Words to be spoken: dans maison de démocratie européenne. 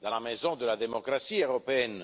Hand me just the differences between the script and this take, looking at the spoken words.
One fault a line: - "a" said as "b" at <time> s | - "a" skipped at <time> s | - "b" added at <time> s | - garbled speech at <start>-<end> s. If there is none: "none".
- "la" added at 0.1 s
- "la" added at 0.7 s